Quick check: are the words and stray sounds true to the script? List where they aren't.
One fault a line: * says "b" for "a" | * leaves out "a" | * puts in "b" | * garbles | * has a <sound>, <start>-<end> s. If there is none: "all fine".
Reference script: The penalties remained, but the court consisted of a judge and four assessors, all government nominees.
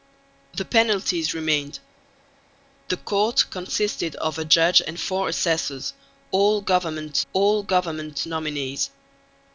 * leaves out "but"
* puts in "all government"